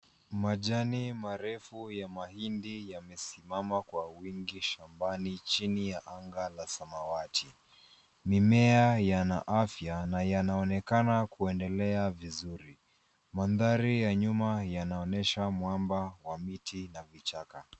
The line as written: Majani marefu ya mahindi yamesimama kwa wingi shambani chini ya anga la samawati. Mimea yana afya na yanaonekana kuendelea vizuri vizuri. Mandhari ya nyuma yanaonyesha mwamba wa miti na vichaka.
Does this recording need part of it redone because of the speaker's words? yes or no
yes